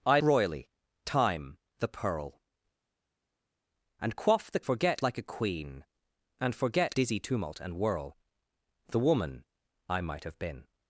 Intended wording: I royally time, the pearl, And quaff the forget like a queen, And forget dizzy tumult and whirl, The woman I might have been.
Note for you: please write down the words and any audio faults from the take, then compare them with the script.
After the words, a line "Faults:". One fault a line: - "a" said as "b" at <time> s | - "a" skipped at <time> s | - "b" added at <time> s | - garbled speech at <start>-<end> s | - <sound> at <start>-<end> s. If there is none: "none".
I royally time, the pearl, And quaff the forget like a queen, And forget dizzy tumult and whirl, The woman I might have been.
Faults:
none